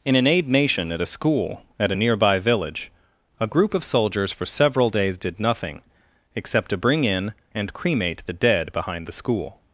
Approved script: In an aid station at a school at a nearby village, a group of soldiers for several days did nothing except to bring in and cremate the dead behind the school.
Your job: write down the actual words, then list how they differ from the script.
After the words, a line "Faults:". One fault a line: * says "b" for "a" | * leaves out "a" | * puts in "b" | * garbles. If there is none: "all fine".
In an aid nation at a school at a nearby village, a group of soldiers for several days did nothing except to bring in and cremate the dead behind the school.
Faults:
* says "nation" for "station"